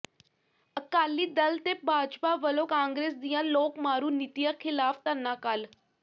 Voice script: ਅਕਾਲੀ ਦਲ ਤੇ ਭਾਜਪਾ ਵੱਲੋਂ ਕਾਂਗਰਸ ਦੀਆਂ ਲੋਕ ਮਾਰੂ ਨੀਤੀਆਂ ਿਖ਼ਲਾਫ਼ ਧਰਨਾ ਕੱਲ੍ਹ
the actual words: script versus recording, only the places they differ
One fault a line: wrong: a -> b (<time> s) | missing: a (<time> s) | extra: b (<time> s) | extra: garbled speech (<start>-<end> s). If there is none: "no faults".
no faults